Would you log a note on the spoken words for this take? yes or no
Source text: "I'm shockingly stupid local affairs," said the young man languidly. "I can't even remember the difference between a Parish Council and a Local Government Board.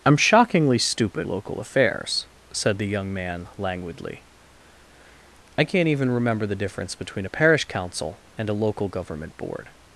no